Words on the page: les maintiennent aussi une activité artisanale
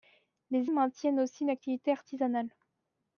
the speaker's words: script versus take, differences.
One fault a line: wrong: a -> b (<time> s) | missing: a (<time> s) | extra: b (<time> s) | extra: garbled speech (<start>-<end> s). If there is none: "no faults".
no faults